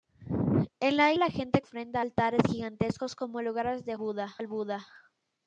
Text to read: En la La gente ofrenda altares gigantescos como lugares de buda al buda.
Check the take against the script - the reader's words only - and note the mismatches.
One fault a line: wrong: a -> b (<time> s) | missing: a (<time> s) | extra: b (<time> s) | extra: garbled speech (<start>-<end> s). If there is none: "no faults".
no faults